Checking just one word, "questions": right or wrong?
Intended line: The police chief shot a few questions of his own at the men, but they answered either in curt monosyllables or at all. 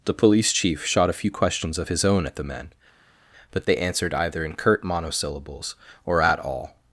right